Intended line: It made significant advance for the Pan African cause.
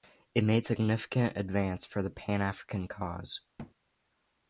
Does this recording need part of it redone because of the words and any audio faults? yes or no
yes